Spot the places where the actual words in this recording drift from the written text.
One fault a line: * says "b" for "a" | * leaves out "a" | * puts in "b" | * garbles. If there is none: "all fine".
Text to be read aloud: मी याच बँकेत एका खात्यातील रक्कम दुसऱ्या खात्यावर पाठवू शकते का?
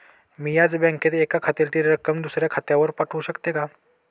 all fine